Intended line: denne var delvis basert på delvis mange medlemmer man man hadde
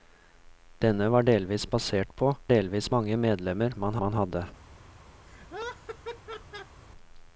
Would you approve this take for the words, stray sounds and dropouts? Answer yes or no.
no